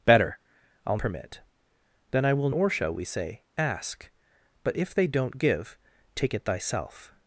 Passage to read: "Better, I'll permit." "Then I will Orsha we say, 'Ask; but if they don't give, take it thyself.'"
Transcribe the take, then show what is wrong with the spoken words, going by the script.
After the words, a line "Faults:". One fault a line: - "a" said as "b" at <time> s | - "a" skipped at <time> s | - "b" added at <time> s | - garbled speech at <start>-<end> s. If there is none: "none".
"Better, I'll permit." "Then I will Orsha we say, 'Ask; but if they don't give, take it thyself.'"
Faults:
none